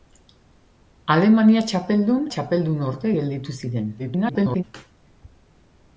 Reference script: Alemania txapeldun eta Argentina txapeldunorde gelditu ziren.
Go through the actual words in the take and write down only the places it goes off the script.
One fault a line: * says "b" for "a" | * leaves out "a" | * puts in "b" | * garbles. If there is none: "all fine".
* leaves out "eta Argentina"
* garbles